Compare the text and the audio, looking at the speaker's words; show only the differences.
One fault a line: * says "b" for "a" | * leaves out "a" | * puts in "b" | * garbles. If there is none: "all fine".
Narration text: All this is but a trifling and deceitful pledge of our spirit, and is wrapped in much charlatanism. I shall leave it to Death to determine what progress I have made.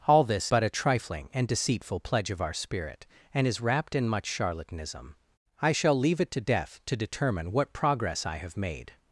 * leaves out "is"